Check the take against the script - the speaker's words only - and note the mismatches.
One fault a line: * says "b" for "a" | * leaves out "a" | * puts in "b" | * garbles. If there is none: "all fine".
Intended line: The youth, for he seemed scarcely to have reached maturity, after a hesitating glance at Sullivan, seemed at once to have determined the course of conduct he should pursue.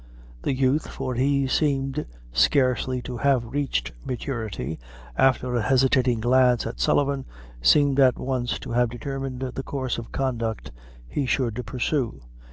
all fine